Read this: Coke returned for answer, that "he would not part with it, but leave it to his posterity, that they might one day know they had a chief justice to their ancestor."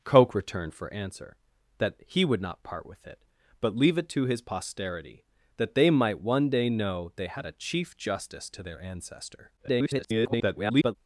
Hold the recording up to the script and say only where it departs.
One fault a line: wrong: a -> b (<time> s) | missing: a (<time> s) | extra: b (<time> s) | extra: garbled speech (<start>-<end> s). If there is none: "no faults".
extra: garbled speech (9.6-11.0 s)